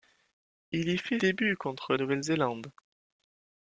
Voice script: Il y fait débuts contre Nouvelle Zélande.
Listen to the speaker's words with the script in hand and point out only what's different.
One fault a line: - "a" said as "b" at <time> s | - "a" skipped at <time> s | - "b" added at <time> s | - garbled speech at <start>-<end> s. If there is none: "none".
none